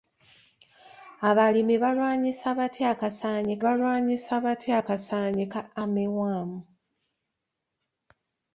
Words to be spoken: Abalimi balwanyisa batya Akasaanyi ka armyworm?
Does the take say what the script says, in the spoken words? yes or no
no